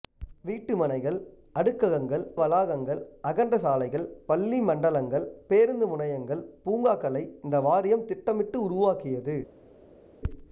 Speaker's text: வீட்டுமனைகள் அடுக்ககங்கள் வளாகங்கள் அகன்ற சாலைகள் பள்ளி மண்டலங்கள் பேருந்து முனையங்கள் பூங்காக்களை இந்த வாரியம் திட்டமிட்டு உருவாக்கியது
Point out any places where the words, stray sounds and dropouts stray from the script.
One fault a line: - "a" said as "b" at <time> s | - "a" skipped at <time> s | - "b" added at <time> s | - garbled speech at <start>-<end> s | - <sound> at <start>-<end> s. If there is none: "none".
none